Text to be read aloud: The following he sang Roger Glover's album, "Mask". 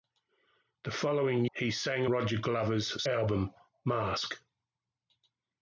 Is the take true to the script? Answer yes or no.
yes